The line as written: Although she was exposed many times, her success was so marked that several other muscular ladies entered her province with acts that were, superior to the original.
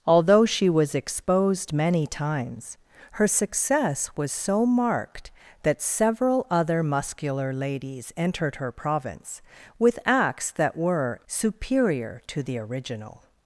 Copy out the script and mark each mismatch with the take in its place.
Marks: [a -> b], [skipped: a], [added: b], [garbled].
Although she was exposed many times, her success was so marked that several other muscular ladies entered her province with acts that were, superior to the original.